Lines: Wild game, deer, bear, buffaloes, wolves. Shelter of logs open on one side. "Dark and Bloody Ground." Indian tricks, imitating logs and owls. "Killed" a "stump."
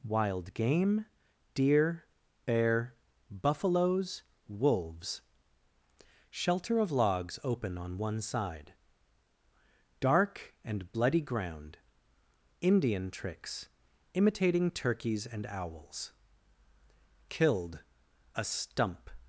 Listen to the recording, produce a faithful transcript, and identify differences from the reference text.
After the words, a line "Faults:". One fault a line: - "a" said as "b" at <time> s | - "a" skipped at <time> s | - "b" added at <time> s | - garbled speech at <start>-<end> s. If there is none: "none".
Wild game, deer, bear, buffaloes, wolves. Shelter of logs open on one side. "Dark and Bloody Ground." Indian tricks, imitating turkeys and owls. "Killed" a "stump."
Faults:
- "logs" said as "turkeys" at 14.7 s